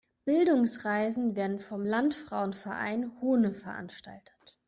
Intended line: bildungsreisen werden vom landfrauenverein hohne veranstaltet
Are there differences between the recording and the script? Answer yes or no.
no